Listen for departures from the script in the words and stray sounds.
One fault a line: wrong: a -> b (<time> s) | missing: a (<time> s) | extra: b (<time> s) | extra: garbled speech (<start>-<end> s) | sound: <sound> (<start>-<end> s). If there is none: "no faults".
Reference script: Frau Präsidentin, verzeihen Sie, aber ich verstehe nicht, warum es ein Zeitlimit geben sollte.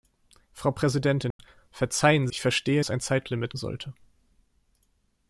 sound: dropout (1.3-1.4 s)
missing: Sie aber (2.3 s)
missing: nicht warum (2.8 s)
missing: geben (3.5 s)